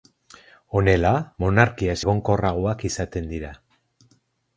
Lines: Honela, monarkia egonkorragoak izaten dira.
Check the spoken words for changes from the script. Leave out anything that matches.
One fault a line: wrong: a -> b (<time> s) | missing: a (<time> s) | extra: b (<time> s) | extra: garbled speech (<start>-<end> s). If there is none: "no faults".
no faults